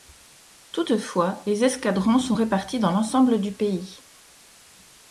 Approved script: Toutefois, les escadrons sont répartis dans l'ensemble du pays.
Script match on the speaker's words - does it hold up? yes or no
yes